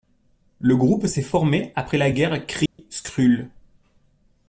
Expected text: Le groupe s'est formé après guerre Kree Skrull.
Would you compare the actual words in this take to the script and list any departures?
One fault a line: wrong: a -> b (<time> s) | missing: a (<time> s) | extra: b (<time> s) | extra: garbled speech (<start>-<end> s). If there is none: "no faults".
extra: la (2.0 s)